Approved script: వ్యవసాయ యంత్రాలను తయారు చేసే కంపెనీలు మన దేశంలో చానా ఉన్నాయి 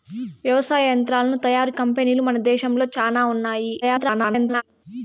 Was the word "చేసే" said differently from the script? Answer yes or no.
yes